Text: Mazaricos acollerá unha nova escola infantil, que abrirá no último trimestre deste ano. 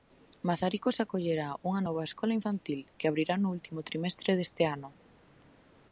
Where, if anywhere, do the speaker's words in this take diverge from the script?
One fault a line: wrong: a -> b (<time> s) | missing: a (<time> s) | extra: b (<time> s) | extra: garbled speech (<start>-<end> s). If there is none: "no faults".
no faults